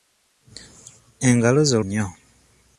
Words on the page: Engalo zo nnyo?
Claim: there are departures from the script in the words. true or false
false